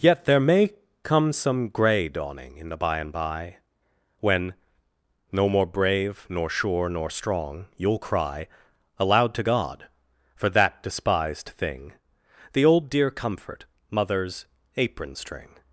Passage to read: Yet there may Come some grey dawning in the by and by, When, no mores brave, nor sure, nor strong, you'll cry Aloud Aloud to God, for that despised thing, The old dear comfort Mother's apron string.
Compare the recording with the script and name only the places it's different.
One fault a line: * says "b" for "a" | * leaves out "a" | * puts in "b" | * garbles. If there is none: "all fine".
* says "more" for "mores"
* leaves out "Aloud"